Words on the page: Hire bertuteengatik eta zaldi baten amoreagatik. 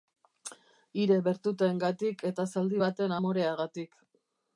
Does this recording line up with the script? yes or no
yes